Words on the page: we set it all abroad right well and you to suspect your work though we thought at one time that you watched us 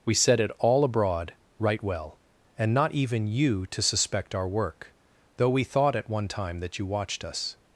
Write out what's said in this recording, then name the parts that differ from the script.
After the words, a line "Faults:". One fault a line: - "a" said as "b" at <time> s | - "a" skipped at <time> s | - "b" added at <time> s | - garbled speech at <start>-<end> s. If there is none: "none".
we set it all abroad right well and not even you to suspect our work though we thought at one time that you watched us
Faults:
- "not even" added at 2.7 s
- "your" said as "our" at 4.3 s